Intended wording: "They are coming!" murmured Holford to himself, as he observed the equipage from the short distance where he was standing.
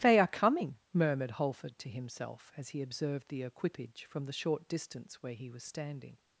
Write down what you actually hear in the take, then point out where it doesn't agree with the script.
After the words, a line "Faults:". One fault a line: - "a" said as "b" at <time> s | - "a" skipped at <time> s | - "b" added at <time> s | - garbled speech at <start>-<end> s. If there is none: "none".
"They are coming!" murmured Holford to himself, as he observed the equipage from the short distance where he was standing.
Faults:
none